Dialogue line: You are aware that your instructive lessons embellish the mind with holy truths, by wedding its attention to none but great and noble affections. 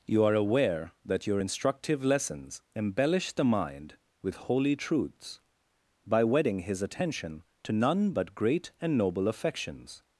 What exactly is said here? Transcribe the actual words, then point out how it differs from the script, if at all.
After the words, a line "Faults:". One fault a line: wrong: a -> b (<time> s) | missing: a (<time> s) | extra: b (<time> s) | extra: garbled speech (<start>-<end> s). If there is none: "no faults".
You are aware that your instructive lessons embellish the mind with holy truths, by wedding his attention to none but great and noble affections.
Faults:
wrong: its -> his (6.6 s)